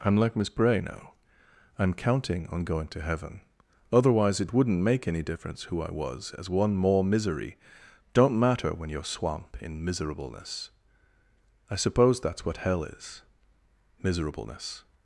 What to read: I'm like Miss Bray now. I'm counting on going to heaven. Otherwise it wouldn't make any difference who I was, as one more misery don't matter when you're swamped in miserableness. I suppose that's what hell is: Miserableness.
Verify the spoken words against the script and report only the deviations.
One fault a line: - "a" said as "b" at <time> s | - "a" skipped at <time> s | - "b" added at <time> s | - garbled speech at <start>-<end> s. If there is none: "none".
- "swamped" said as "swamp" at 9.1 s